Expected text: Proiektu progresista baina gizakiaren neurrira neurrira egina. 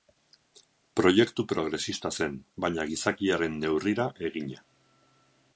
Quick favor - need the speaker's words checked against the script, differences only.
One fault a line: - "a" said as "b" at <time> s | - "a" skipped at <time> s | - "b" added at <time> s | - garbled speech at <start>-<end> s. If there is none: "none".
- "zen" added at 2.2 s
- "neurrira" skipped at 4.1 s